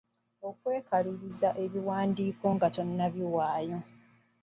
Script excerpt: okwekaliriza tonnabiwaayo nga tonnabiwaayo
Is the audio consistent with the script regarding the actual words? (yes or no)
no